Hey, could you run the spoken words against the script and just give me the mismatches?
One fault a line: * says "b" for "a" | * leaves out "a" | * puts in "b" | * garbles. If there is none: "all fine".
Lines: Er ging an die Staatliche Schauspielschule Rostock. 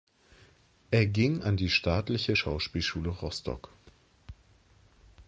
all fine